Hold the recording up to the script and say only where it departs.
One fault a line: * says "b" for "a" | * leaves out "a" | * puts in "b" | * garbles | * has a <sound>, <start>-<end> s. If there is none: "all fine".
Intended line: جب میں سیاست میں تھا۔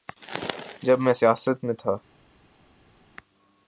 all fine